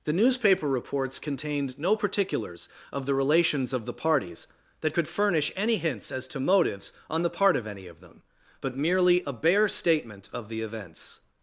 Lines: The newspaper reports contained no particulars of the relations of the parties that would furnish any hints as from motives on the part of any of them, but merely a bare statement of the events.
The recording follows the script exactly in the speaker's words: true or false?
false